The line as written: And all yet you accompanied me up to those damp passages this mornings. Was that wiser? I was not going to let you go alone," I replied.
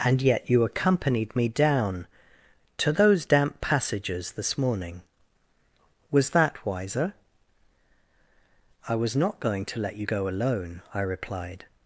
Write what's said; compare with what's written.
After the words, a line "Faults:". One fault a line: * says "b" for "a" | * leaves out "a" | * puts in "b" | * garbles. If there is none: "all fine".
And yet you accompanied me down to those damp passages this morning. Was that wiser? I was not going to let you go alone," I replied.
Faults:
* leaves out "all"
* says "down" for "up"
* says "morning" for "mornings"